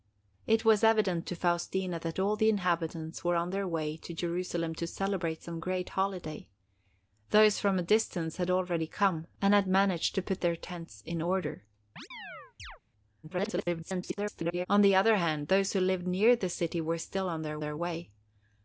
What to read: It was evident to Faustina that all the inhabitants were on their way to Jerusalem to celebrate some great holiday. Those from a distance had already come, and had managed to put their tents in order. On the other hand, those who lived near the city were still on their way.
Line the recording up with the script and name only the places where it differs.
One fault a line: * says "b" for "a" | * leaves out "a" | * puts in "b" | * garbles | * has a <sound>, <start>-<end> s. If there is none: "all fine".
* has a chirp, 12.0-12.8 s
* garbles
* puts in "their"